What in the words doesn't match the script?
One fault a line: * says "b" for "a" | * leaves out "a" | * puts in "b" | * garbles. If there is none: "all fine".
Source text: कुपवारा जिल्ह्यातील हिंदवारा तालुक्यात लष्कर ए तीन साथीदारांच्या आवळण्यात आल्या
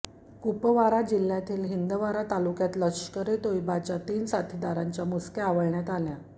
* puts in "तोयबाच्या"
* puts in "मुसक्या"